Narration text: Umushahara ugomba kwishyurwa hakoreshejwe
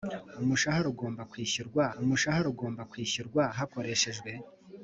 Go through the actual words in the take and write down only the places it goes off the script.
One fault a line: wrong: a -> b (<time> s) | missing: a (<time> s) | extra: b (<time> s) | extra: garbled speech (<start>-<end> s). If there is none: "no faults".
extra: umushahara ugomba kwishyurwa (2.0 s)